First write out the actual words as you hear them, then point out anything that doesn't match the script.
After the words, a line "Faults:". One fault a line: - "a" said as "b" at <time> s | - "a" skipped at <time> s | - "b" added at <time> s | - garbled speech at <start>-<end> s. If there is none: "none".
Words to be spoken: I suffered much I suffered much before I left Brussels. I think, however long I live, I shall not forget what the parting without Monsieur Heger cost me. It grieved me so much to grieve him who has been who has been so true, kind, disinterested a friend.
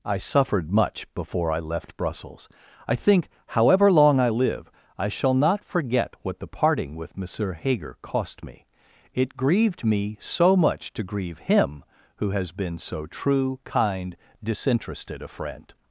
I suffered much before I left Brussels. I think, however long I live, I shall not forget what the parting with Monsieur Heger cost me. It grieved me so much to grieve him who has been so true, kind, disinterested a friend.
Faults:
- "I suffered much" skipped at 1.1 s
- "without" said as "with" at 7.0 s
- "who has been" skipped at 12.8 s